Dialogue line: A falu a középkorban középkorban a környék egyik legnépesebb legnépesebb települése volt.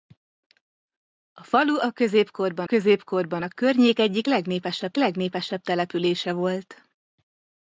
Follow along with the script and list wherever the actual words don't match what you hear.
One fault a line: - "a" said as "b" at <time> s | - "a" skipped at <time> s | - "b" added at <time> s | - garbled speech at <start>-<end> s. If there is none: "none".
none